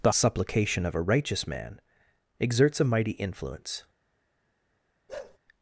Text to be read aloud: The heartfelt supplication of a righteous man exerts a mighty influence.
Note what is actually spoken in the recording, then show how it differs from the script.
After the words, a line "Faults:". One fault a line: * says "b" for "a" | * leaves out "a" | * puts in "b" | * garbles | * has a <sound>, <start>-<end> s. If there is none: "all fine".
The supplication of a righteous man exerts a mighty influence.
Faults:
* leaves out "heartfelt"
* has a bark, 5.1-5.4 s